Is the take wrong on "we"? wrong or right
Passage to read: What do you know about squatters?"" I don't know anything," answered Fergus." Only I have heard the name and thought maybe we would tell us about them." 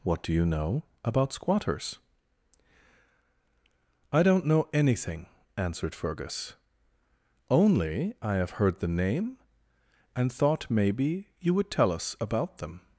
wrong